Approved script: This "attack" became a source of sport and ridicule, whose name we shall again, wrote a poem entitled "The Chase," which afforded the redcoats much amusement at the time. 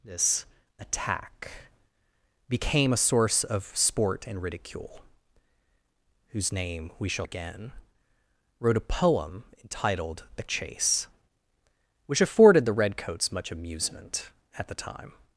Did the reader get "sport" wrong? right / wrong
right